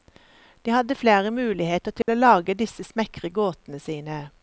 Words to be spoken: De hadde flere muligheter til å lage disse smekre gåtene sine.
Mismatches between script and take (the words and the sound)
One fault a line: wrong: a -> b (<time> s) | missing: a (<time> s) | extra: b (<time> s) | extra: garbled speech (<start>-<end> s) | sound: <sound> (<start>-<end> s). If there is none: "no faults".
sound: dropout (2.0-2.1 s)